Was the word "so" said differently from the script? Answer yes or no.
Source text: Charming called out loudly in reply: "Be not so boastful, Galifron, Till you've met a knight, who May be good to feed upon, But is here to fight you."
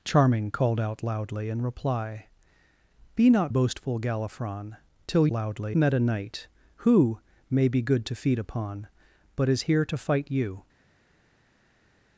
yes